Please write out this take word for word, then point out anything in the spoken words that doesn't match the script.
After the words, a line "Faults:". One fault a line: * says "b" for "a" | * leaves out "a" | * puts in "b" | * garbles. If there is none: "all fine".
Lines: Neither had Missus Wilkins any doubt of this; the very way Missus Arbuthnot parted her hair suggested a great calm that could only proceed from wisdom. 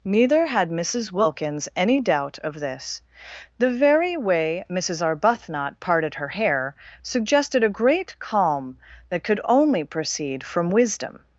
Neither had Missus Wilkins any doubt of this; the very way Missus Arbuthnot parted her hair suggested a great calm that could only proceed from wisdom.
Faults:
all fine